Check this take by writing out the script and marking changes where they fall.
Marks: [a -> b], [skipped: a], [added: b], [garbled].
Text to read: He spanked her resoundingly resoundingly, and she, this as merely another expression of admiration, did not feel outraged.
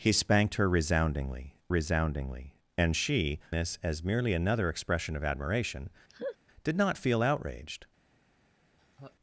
He spanked her resoundingly resoundingly, and she, this as merely another expression of admiration, did not feel outraged.